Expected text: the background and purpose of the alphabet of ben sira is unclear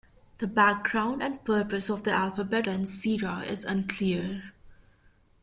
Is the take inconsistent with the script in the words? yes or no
yes